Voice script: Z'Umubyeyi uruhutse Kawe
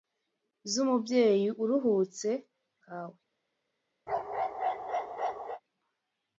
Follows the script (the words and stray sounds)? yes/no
no